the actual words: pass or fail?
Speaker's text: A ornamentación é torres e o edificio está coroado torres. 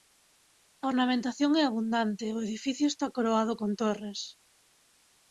fail